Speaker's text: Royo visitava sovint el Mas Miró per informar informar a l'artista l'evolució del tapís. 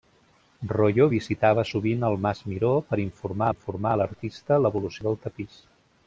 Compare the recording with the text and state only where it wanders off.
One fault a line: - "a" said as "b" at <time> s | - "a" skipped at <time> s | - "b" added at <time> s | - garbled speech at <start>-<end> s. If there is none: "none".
none